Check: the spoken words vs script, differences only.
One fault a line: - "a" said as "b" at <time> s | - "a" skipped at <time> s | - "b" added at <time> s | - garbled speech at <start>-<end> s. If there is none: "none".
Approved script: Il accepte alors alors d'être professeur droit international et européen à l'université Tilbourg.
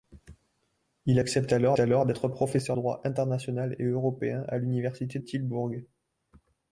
none